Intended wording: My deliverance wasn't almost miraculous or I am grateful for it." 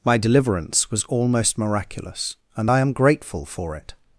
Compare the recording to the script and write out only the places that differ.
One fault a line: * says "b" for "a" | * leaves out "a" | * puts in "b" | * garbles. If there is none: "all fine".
* says "was" for "wasn't"
* says "and" for "or"